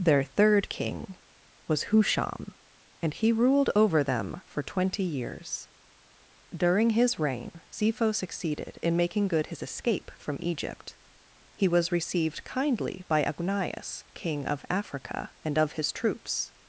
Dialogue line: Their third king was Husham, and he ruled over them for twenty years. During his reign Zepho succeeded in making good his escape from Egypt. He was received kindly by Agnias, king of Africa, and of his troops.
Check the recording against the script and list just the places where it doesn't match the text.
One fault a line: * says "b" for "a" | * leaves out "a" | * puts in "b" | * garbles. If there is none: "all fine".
all fine